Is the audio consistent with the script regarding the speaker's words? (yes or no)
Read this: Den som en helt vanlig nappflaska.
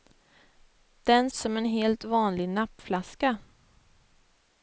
yes